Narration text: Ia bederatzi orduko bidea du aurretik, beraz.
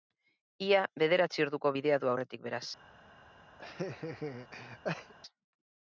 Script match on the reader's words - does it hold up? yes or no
yes